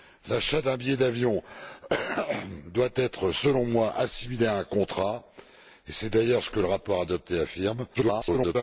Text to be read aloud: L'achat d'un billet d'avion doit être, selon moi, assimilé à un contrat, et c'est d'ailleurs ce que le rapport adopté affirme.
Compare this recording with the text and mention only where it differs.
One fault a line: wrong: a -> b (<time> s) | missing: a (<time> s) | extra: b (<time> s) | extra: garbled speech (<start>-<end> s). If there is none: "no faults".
extra: garbled speech (7.9-8.6 s)